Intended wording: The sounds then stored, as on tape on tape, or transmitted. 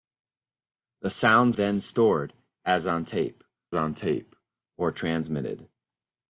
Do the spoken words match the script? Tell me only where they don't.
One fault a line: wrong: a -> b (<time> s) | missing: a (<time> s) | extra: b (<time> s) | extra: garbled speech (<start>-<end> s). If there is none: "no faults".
no faults